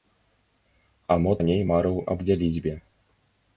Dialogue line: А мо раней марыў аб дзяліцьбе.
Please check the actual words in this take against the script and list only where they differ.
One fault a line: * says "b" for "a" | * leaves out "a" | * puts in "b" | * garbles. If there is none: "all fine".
all fine